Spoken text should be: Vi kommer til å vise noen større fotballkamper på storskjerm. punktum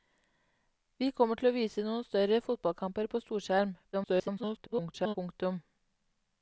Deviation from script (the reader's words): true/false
true